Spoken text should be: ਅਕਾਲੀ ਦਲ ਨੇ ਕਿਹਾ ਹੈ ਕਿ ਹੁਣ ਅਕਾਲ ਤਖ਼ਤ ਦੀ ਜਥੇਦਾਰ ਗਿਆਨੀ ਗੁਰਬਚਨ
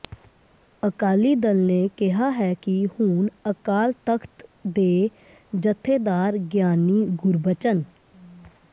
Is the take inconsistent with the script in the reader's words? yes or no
yes